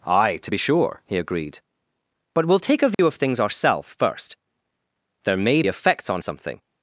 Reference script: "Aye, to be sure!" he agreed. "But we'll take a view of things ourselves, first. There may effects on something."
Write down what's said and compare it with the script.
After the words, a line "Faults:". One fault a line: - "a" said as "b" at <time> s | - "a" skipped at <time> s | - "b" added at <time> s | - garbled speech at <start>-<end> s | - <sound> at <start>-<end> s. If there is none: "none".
"Aye, to be sure!" he agreed. "But we'll take a view of things ourselves, first. There may effects on something."
Faults:
- dropout at 2.9-3.0 s